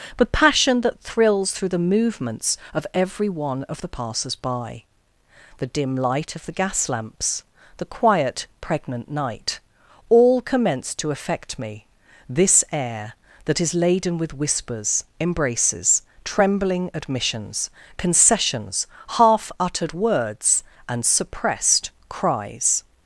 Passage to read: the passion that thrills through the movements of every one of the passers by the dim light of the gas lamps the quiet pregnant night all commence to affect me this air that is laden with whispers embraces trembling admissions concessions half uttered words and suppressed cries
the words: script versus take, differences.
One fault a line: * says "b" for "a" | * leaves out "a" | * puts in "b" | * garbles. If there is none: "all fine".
* says "but" for "the"